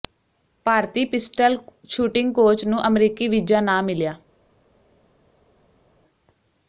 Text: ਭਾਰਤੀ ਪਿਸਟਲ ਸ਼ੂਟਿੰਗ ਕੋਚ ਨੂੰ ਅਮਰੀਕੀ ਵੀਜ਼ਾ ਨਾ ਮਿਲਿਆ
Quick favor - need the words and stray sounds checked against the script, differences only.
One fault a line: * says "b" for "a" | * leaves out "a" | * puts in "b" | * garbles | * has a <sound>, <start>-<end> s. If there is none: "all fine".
all fine